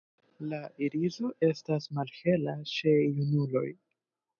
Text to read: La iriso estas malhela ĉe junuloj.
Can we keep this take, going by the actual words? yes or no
yes